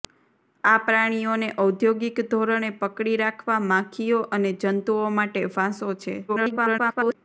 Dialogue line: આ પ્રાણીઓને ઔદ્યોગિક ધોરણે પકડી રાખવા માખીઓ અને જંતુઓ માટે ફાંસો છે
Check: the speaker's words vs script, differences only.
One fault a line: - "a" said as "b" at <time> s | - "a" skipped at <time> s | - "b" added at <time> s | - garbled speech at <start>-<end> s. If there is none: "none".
- garbled speech at 6.3-7.2 s